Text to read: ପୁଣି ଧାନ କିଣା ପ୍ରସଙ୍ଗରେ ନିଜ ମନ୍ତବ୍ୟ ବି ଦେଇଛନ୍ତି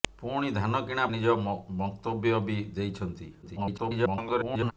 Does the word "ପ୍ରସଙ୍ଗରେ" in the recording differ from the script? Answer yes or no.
yes